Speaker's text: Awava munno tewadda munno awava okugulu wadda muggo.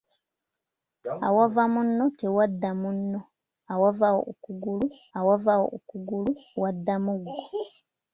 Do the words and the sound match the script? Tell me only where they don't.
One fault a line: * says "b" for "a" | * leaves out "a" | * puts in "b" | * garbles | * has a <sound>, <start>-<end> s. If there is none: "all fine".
* puts in "awava okugulu"